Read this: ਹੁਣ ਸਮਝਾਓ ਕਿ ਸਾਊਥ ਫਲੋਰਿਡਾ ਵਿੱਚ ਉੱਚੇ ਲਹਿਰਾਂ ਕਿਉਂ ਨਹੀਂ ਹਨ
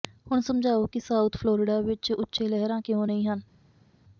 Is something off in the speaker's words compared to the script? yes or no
no